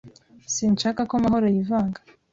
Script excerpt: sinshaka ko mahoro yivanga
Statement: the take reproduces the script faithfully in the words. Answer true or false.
true